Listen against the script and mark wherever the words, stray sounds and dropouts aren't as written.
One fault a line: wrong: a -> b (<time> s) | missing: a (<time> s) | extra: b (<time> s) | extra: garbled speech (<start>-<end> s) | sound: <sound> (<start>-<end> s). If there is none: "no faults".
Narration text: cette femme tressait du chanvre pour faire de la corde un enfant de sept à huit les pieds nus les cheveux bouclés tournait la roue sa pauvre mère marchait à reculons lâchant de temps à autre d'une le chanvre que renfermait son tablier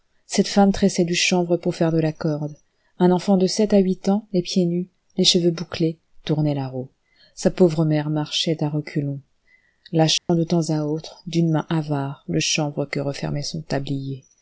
extra: ans (4.1 s)
sound: dropout (10.2-10.3 s)
extra: main avare (11.5 s)